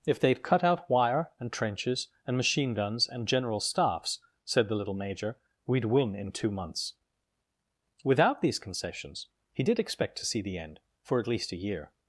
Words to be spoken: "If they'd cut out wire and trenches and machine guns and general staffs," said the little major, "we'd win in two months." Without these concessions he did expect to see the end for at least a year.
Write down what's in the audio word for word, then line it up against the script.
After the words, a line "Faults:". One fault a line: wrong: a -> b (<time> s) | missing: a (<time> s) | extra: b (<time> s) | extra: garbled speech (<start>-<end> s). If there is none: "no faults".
"If they'd cut out wire and trenches and machine guns and general staffs," said the little major, "we'd win in two months." Without these concessions he did expect to see the end for at least a year.
Faults:
no faults